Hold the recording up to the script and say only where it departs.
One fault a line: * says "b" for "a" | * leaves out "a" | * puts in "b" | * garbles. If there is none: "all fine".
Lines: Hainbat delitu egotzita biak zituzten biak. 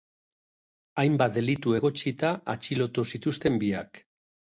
* says "atxilotu" for "biak"